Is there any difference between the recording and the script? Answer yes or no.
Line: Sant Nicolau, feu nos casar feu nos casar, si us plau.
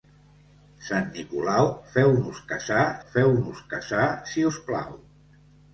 no